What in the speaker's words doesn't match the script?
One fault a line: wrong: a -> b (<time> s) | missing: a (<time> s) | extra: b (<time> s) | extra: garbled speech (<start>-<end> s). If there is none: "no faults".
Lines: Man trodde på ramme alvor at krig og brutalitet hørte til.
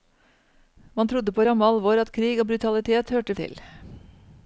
no faults